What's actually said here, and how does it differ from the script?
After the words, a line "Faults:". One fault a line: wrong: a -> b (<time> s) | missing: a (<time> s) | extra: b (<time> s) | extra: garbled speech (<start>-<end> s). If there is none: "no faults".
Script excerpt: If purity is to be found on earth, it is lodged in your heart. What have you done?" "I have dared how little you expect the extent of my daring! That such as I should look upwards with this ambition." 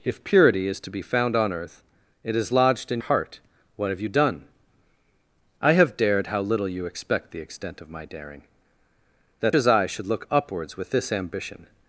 If purity is to be found on earth, it is lodged in heart. What have you done?" "I have dared how little you expect the extent of my daring! That as I should look upwards with this ambition."
Faults:
missing: your (3.0 s)
missing: such (9.6 s)